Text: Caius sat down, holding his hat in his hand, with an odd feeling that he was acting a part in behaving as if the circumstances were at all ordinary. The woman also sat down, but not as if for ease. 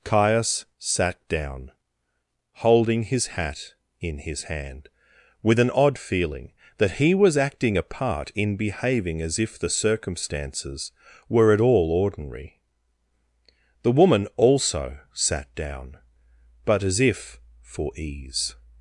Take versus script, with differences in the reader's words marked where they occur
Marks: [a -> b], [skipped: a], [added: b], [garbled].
Caius sat down, holding his hat in his hand, with an odd feeling that he was acting a part in behaving as if the circumstances were at all ordinary. The woman also sat down, but [skipped: not] as if for ease.